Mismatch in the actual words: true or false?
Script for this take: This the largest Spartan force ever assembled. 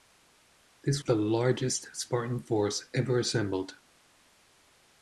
false